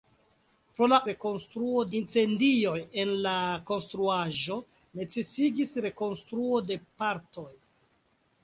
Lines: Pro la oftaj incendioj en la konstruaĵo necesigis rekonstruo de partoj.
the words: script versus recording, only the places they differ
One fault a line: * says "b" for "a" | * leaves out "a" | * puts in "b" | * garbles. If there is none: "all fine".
* says "rekonstruo" for "oftaj"